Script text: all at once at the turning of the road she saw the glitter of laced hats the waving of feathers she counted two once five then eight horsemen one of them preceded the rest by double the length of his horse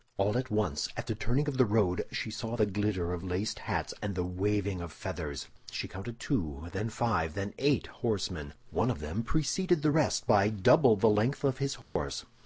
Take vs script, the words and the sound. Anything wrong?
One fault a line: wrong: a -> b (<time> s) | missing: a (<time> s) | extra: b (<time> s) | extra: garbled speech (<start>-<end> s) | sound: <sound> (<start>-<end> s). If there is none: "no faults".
extra: and (4.0 s)
wrong: once -> then (6.7 s)
sound: dropout (11.8-12.0 s)